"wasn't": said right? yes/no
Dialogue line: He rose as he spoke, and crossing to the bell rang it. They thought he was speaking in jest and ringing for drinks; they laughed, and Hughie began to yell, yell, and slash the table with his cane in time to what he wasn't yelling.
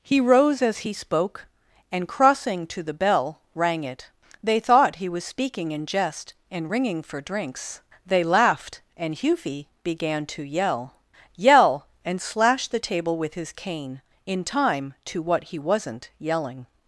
yes